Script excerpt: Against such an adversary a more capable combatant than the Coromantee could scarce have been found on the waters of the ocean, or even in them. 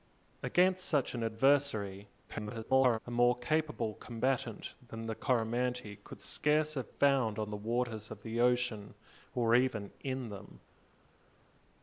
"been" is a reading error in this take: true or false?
true